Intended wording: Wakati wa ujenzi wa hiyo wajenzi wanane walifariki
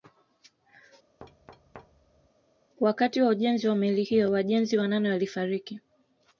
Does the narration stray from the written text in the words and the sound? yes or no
yes